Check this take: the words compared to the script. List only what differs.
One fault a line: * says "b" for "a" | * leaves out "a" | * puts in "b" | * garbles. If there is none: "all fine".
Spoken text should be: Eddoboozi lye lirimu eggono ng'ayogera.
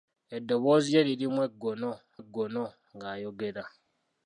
* puts in "eggono"